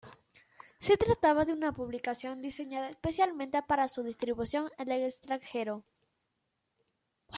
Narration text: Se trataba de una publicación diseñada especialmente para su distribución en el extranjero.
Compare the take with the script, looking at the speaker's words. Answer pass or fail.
pass